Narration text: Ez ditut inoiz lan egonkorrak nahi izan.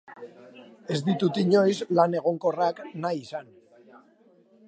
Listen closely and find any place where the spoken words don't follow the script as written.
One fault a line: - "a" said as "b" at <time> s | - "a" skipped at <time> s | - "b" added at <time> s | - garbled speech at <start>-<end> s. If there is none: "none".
none